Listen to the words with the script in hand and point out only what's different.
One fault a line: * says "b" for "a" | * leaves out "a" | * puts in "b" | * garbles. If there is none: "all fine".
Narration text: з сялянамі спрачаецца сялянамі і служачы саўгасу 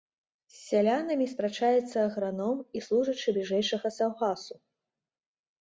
* says "аграном" for "сялянамі"
* puts in "бліжэйшага"